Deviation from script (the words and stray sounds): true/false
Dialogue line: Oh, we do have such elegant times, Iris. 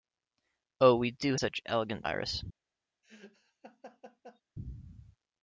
true